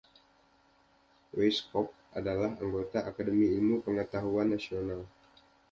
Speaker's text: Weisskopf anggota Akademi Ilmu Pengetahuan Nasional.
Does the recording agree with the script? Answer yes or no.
no